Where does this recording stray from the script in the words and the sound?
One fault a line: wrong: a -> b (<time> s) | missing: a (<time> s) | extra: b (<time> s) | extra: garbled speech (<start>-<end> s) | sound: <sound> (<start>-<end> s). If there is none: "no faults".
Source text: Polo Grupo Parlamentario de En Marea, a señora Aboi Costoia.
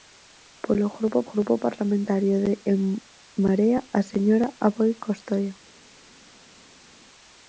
extra: Grupo (1.3 s)